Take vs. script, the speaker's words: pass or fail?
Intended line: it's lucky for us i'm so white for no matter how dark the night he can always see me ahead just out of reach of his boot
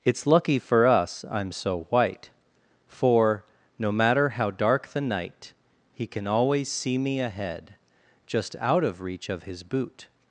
pass